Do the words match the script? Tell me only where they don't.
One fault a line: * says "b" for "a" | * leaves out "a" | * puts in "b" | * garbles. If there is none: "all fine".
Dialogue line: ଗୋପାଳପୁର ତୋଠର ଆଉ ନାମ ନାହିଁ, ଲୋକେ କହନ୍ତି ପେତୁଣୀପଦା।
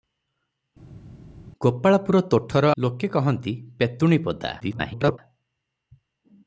* leaves out "ଆଉ ନାମ ନାହିଁ"
* garbles